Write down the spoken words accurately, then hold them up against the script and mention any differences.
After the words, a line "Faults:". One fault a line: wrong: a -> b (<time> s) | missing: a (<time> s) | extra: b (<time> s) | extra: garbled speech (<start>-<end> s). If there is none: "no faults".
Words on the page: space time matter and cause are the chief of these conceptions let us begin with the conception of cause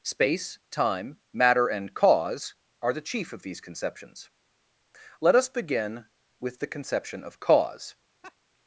space time matter and cause are the chief of these conceptions let us begin with the conception of cause
Faults:
no faults